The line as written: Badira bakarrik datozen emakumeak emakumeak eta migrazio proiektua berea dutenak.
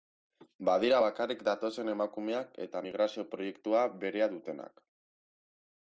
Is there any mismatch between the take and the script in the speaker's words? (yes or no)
yes